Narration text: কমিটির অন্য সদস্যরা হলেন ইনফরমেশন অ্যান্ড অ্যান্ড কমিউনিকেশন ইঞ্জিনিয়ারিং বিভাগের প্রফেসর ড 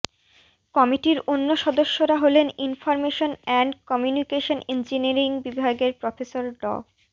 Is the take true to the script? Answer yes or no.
no